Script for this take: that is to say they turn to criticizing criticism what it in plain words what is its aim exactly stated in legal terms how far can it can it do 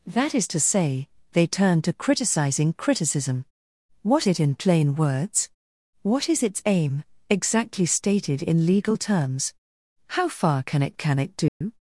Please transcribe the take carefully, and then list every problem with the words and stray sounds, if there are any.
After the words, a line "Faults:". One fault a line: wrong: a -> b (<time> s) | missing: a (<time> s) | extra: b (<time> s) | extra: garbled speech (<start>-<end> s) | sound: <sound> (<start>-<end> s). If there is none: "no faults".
that is to say they turn to criticizing criticism what it in plain words what is its aim exactly stated in legal terms how far can it can it do
Faults:
sound: dropout (11.5-11.6 s)